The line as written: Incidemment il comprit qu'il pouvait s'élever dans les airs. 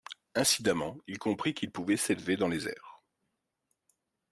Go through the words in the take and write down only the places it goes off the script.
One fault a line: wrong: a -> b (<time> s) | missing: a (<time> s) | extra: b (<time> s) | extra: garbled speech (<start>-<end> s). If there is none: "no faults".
no faults